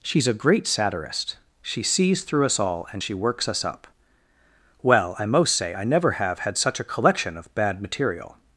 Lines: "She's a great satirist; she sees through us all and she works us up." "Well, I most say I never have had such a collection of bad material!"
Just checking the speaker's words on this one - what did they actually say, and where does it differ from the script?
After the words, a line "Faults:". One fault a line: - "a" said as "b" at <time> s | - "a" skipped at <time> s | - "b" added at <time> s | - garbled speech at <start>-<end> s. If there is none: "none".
"She's a great satirist; she sees through us all and she works us up." "Well, I most say I never have had such a collection of bad material!"
Faults:
none